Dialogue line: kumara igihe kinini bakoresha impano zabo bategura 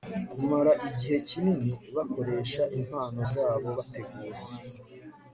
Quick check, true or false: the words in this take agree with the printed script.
true